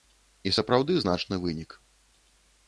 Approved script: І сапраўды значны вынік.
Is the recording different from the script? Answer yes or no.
no